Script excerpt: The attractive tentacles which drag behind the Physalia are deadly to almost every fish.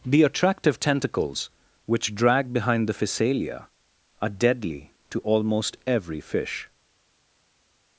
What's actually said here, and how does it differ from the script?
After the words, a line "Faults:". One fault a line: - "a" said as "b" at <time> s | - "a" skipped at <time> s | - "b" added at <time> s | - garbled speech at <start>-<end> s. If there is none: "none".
The attractive tentacles which drag behind the Physalia are deadly to almost every fish.
Faults:
none